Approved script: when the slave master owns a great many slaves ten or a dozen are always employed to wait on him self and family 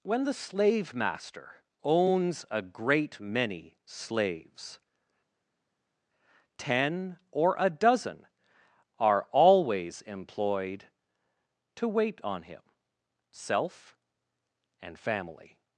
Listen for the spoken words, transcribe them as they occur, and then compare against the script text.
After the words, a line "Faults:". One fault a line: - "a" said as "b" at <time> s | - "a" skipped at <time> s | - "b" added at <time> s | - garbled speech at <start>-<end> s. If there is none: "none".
when the slave master owns a great many slaves ten or a dozen are always employed to wait on him self and family
Faults:
none